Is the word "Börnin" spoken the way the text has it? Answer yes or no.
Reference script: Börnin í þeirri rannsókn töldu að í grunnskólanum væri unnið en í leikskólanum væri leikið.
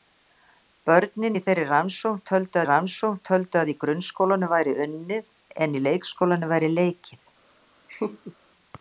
yes